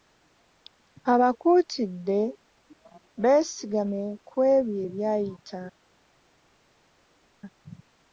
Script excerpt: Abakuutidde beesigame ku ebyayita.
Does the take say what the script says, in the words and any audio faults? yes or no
no